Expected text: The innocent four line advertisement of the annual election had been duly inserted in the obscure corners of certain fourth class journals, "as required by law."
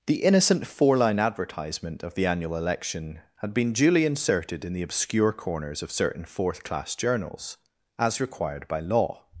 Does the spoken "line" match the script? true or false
true